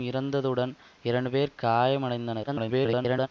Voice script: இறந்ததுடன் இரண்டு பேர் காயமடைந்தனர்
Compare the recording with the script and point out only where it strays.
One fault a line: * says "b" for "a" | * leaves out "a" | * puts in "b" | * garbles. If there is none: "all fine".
* garbles